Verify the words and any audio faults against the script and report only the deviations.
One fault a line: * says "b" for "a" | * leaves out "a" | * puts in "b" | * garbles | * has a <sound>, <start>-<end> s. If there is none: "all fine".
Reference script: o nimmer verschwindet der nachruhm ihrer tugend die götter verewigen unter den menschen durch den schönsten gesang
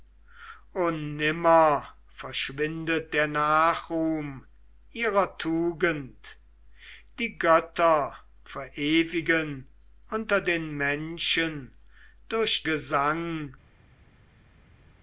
* leaves out "den schönsten"